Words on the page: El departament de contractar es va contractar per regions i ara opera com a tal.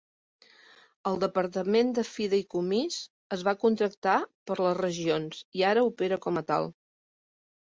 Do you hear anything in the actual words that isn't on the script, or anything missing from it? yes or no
yes